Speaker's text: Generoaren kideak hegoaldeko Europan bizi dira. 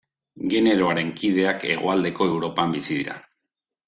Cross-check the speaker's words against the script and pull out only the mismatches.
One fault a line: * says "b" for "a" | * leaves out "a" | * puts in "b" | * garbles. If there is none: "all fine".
all fine